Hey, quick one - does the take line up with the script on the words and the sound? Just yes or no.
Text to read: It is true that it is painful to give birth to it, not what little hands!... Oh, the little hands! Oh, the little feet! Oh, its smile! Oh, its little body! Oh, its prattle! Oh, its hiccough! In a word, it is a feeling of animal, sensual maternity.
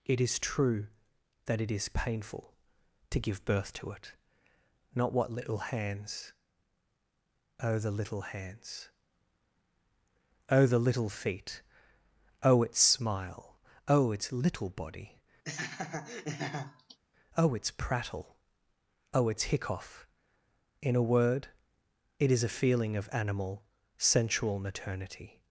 no